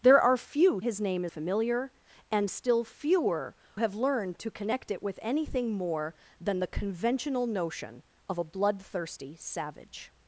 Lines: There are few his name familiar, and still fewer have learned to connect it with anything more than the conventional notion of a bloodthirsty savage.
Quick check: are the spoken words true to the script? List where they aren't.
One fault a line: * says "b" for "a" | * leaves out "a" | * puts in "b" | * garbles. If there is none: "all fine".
all fine